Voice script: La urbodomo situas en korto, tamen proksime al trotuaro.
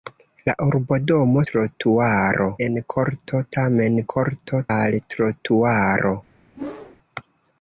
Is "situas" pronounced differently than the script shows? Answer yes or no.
yes